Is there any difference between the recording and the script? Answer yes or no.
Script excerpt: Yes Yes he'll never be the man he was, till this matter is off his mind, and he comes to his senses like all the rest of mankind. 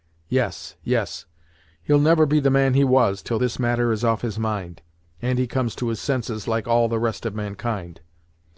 no